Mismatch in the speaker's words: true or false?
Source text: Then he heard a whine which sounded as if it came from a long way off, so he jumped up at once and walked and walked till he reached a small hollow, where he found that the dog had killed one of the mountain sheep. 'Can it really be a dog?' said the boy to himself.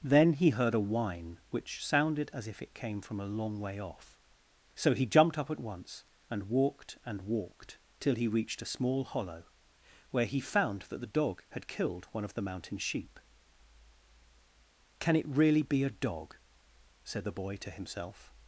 false